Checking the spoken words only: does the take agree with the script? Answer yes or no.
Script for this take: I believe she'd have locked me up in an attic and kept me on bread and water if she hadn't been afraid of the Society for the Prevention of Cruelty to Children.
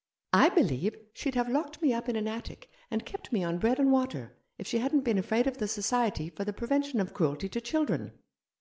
yes